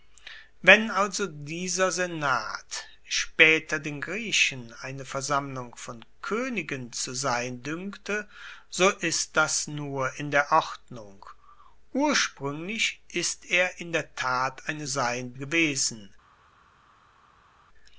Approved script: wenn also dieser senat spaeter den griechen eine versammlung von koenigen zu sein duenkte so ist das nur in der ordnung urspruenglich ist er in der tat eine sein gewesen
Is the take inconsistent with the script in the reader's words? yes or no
no